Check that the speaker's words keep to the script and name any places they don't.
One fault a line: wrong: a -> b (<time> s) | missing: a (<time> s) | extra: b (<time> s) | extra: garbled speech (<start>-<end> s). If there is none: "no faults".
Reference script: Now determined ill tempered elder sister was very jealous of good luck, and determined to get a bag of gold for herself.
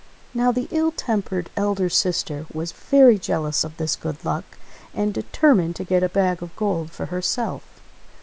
wrong: determined -> the (0.5 s)
extra: this (3.8 s)